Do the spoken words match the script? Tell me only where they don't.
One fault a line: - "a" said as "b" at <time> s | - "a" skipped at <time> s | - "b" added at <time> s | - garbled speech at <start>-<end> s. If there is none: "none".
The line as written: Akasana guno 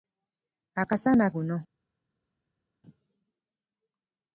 none